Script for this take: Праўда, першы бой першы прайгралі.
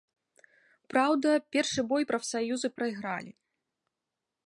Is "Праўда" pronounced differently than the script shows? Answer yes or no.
no